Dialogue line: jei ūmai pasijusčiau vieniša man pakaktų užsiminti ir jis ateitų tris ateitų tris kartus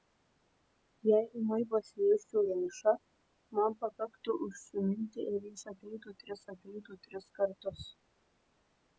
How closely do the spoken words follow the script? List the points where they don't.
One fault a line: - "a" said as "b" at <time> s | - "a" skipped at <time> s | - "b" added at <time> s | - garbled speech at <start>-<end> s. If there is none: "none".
none